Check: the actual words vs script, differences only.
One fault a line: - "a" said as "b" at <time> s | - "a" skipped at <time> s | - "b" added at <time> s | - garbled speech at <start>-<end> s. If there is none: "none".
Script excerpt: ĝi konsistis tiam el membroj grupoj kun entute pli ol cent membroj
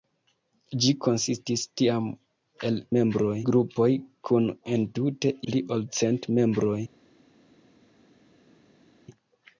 none